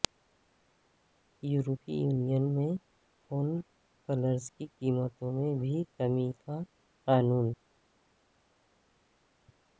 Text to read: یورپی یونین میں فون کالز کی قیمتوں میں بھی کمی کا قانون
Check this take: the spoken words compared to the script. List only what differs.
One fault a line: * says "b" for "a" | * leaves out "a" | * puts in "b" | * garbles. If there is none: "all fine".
all fine